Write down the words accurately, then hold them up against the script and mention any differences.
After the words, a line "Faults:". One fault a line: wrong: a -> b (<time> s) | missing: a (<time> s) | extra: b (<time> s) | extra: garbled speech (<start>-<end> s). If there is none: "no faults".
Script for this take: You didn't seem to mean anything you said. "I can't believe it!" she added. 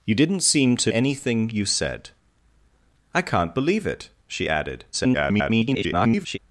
You didn't seem to anything you said. "I can't believe it!" she added. [garbled]
Faults:
missing: mean (0.9 s)
extra: garbled speech (4.9-6.4 s)